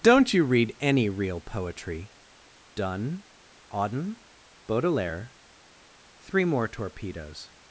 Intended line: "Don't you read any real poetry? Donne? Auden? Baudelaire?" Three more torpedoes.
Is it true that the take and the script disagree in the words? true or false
false